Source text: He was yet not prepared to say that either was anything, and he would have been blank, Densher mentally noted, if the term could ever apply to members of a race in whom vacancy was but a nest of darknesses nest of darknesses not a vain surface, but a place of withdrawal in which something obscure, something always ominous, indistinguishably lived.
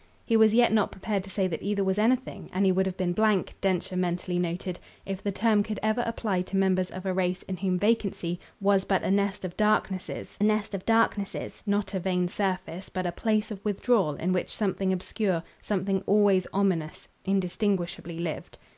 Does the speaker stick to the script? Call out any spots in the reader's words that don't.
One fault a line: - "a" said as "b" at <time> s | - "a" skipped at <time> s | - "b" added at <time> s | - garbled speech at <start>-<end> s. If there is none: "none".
none